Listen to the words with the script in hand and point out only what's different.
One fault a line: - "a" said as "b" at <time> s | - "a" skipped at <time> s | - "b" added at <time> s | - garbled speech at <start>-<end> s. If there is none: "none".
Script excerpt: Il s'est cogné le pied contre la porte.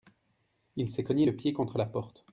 none